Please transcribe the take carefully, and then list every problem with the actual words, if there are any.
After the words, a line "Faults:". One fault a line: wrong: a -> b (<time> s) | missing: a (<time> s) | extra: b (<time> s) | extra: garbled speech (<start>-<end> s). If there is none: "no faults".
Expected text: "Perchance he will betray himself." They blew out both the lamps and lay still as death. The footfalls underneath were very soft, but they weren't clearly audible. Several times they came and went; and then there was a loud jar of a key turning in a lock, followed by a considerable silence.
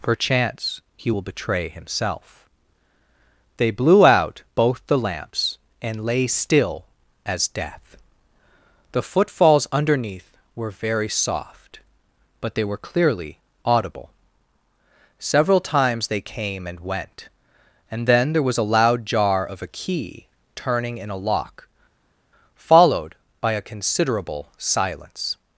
"Perchance he will betray himself." They blew out both the lamps and lay still as death. The footfalls underneath were very soft, but they were clearly audible. Several times they came and went; and then there was a loud jar of a key turning in a lock, followed by a considerable silence.
Faults:
wrong: weren't -> were (12.6 s)